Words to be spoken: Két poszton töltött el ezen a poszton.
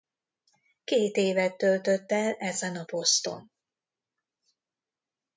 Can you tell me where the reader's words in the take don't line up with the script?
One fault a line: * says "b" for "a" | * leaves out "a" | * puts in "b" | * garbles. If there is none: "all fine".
* says "évet" for "poszton"